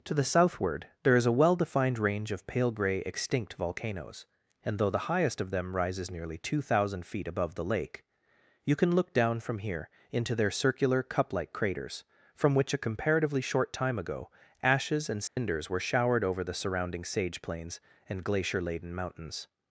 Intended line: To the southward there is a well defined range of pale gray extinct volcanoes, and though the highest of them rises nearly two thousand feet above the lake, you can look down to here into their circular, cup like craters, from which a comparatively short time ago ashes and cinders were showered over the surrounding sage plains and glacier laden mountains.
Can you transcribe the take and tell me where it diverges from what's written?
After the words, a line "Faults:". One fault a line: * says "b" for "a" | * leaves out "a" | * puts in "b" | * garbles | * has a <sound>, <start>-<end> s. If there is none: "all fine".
To the southward there is a well defined range of pale gray extinct volcanoes, and though the highest of them rises nearly two thousand feet above the lake, you can look down from here into their circular, cup like craters, from which a comparatively short time ago ashes and cinders were showered over the surrounding sage plains and glacier laden mountains.
Faults:
* says "from" for "to"
* has a dropout, 15.3-15.4 s